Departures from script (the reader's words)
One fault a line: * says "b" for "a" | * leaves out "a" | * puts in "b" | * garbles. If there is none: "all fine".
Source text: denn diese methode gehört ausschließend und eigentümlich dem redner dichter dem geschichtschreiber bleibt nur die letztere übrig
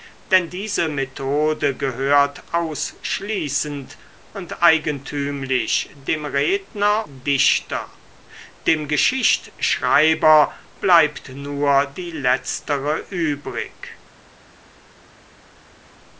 all fine